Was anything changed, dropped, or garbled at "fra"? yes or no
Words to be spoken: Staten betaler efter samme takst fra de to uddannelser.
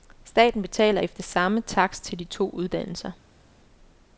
yes